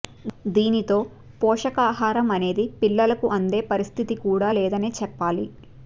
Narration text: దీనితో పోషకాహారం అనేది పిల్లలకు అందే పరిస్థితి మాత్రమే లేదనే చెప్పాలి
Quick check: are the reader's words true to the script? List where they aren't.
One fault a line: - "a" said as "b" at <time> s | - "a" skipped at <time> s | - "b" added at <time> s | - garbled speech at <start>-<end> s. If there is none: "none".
- "మాత్రమే" said as "కూడా" at 4.2 s